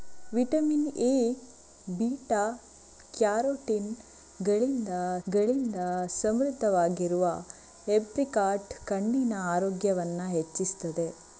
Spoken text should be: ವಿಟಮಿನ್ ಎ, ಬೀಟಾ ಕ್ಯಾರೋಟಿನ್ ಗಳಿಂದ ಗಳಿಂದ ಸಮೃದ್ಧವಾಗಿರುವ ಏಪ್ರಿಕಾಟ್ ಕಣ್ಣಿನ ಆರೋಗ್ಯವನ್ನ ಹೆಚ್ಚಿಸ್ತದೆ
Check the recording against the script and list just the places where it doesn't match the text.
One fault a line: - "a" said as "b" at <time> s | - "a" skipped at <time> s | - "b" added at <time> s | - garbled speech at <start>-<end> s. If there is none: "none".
none